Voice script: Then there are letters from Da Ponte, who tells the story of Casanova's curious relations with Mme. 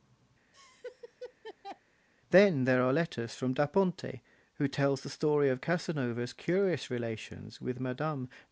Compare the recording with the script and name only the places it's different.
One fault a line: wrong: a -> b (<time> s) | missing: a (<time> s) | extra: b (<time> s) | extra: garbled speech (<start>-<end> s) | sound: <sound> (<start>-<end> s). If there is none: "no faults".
sound: laugh (0.5-1.8 s)